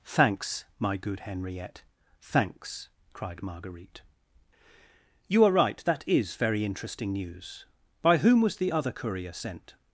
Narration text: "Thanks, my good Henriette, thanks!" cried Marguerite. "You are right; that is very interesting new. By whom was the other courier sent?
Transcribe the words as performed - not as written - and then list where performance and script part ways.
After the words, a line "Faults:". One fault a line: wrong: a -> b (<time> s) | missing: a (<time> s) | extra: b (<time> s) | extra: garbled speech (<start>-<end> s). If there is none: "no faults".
"Thanks, my good Henriette, thanks!" cried Marguerite. "You are right; that is very interesting news. By whom was the other courier sent?
Faults:
wrong: new -> news (7.1 s)